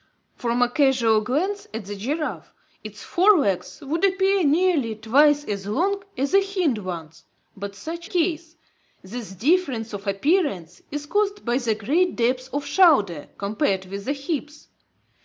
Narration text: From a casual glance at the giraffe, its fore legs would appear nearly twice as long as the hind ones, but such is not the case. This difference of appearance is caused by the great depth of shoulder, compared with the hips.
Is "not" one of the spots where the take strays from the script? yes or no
yes